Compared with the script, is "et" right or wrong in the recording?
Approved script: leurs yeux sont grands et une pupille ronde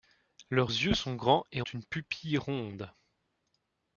right